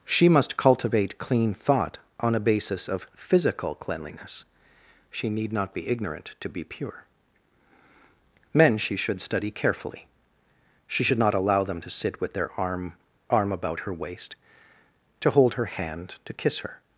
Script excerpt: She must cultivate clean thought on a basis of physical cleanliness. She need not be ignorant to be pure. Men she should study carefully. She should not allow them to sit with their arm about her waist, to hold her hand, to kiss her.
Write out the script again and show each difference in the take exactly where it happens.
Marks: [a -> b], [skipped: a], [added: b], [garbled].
She must cultivate clean thought on a basis of physical cleanliness. She need not be ignorant to be pure. Men she should study carefully. She should not allow them to sit with their arm [added: arm] about her waist, to hold her hand, to kiss her.